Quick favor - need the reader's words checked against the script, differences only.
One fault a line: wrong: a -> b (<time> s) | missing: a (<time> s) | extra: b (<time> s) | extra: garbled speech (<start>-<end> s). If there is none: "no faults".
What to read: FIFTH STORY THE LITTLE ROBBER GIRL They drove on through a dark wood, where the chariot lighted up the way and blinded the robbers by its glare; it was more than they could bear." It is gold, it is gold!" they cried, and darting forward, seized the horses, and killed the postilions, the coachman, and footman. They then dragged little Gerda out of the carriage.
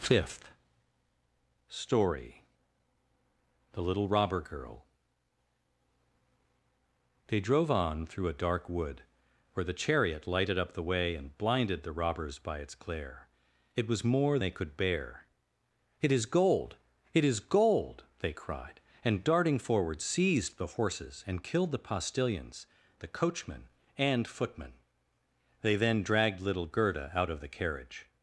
missing: than (14.4 s)